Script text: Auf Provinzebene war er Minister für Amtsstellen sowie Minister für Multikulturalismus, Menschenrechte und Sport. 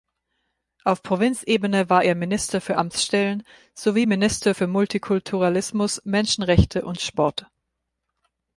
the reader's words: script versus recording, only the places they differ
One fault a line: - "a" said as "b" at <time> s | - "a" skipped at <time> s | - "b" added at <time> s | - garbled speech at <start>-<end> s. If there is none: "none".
none